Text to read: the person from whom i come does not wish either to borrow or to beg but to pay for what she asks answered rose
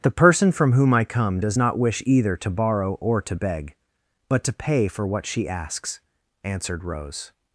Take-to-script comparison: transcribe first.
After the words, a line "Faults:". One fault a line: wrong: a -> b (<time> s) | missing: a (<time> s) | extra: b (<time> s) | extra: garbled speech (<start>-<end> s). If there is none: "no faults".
the person from whom i come does not wish either to borrow or to beg but to pay for what she asks answered rose
Faults:
no faults